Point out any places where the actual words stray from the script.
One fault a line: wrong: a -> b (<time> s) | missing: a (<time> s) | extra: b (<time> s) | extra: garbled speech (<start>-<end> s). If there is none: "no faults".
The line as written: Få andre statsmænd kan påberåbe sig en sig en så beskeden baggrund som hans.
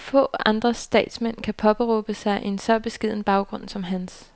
missing: sig en (2.6 s)